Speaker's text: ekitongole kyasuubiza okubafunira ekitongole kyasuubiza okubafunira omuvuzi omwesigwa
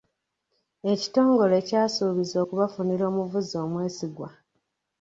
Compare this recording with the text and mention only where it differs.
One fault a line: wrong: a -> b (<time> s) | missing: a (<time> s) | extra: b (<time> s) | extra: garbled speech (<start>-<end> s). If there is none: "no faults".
missing: ekitongole kyasuubiza okubafunira (3.0 s)